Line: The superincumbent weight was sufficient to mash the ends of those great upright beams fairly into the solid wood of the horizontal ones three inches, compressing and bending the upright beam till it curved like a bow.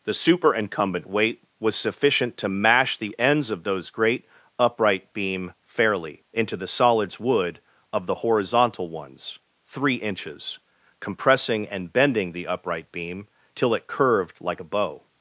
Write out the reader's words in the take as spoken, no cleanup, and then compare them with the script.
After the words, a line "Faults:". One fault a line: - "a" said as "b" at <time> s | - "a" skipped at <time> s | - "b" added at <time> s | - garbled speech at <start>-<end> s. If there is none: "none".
The superincumbent weight was sufficient to mash the ends of those great upright beam fairly into the solids wood of the horizontal ones three inches, compressing and bending the upright beam till it curved like a bow.
Faults:
- "beams" said as "beam" at 5.1 s
- "solid" said as "solids" at 6.7 s